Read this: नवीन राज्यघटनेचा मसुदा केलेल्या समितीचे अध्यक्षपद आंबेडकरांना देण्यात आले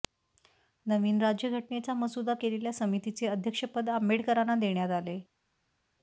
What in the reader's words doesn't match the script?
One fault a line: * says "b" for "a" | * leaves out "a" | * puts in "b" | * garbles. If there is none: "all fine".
all fine